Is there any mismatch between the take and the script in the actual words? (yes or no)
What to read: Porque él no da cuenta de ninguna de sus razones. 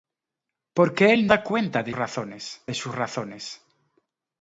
yes